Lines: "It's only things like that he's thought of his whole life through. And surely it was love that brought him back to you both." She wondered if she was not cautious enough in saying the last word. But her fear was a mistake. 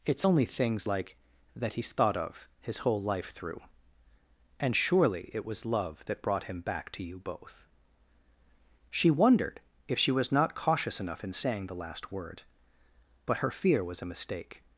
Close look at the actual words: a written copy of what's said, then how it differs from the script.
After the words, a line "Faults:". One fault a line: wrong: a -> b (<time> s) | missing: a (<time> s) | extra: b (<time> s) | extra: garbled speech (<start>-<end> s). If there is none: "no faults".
"It's only things like that he's thought of his whole life through. And surely it was love that brought him back to you both." She wondered if she was not cautious enough in saying the last word. But her fear was a mistake.
Faults:
no faults